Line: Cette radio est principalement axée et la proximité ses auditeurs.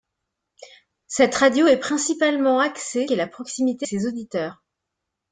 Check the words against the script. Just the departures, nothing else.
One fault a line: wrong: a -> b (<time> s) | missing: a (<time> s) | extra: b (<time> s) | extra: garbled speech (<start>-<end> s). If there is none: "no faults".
no faults